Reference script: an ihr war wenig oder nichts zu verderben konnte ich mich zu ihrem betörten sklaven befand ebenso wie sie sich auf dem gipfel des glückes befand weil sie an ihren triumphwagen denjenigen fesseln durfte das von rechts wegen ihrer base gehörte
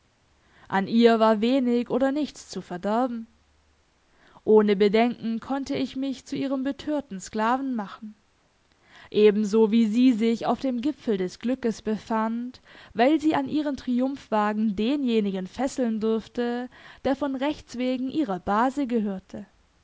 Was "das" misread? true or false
true